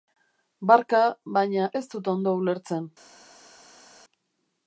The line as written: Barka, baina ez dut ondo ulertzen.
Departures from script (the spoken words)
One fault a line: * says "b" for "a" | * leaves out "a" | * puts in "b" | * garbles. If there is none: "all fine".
all fine